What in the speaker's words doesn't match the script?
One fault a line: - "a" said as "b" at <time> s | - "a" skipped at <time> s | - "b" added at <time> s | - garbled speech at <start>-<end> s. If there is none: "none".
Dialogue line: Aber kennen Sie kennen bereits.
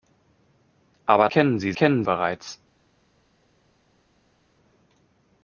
none